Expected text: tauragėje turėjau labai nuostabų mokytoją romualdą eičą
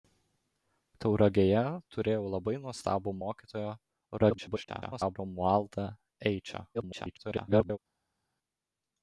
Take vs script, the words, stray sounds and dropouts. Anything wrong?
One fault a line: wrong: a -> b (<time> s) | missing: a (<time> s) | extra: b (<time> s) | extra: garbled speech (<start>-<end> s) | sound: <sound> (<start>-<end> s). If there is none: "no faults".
extra: garbled speech (4.2-5.2 s)
extra: garbled speech (6.7-7.8 s)